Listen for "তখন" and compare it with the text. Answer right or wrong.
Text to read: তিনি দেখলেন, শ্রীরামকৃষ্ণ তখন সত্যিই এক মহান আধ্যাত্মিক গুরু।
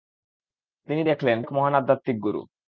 wrong